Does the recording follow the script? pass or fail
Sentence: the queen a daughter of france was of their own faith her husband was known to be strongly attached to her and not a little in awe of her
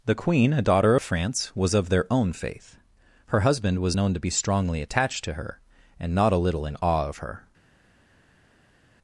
pass